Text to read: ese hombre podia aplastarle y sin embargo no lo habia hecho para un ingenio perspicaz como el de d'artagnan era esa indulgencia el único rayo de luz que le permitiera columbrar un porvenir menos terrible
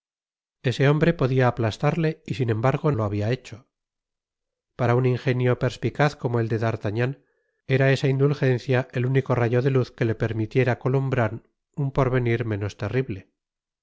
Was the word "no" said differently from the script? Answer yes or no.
yes